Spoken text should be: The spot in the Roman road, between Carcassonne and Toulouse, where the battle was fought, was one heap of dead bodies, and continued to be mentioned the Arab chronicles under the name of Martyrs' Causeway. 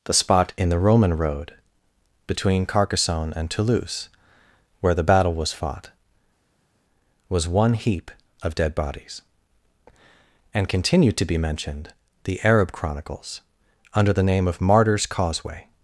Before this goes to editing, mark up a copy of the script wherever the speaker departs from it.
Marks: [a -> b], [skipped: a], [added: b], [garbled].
The spot in the Roman road, between Carcassonne and Toulouse, where the battle was fought, was one heap of dead bodies, and continued to be mentioned the Arab chronicles under the name of Martyrs' Causeway.